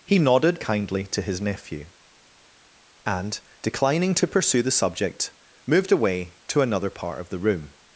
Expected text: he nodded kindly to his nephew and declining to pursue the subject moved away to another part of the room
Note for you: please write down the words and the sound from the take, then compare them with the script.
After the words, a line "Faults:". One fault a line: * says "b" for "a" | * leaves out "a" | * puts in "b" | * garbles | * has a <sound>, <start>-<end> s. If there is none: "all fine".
he nodded kindly to his nephew and declining to pursue the subject moved away to another part of the room
Faults:
all fine